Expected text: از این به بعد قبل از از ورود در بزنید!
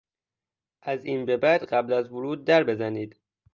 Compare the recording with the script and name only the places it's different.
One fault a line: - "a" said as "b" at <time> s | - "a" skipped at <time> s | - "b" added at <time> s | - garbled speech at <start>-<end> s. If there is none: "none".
- "از" skipped at 2.1 s